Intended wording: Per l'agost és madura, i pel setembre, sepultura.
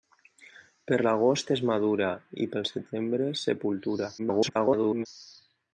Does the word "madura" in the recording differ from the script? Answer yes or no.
no